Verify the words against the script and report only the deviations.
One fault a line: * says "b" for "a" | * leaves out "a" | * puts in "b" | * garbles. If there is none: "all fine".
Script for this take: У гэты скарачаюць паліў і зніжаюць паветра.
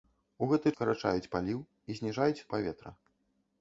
all fine